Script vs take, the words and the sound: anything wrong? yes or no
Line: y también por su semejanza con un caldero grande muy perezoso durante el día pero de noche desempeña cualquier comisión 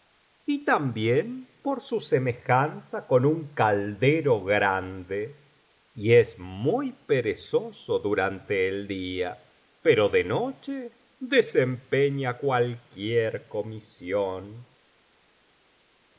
yes